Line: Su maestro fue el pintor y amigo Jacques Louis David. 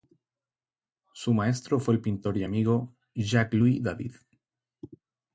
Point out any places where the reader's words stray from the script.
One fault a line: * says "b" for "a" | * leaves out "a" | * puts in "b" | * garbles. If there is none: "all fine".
all fine